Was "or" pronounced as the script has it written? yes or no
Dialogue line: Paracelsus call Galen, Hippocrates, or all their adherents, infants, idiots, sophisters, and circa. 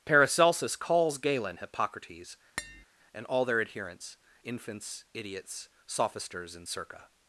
no